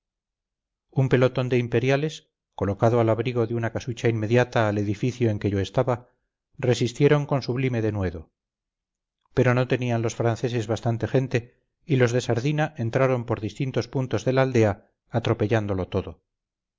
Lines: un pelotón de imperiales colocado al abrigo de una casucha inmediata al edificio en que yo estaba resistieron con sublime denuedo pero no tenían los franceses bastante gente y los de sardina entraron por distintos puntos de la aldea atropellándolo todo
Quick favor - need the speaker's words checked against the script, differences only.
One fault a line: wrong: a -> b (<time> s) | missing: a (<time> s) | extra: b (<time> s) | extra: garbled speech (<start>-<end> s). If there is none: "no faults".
no faults